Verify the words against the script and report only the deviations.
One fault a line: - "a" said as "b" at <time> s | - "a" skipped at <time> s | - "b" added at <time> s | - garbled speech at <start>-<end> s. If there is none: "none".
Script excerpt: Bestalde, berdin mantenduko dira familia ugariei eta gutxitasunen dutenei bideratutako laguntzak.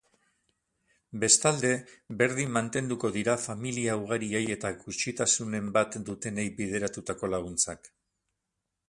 - "bat" added at 5.8 s